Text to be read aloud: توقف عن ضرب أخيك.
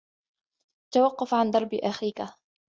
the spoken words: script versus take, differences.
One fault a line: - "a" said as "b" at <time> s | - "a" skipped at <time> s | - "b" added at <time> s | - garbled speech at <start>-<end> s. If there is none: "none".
none